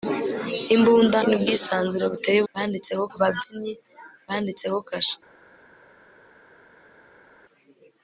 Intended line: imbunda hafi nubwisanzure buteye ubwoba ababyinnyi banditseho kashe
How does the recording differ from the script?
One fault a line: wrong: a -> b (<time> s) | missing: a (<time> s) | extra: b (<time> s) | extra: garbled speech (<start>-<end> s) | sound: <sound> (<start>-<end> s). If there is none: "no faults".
missing: hafi (1.2 s)
wrong: ubwoba -> banditseho (2.5 s)